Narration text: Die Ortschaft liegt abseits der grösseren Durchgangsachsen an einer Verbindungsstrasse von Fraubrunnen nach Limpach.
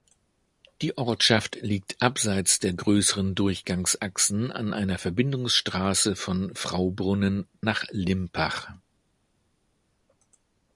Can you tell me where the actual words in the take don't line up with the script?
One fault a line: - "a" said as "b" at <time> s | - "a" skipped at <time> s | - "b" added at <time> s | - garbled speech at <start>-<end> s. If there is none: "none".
none